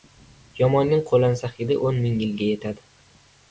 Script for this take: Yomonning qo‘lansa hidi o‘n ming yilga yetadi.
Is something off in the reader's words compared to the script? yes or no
no